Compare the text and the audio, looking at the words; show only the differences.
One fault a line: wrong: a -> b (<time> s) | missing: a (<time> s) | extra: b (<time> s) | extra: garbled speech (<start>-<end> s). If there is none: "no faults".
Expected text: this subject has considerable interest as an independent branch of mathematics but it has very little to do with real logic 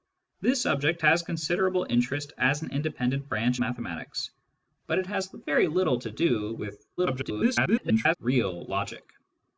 missing: of (3.6 s)
extra: garbled speech (7.0-8.2 s)